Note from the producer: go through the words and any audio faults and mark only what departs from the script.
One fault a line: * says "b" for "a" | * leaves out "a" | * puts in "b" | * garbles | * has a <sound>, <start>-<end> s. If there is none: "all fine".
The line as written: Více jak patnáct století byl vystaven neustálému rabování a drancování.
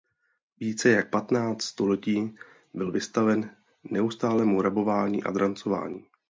all fine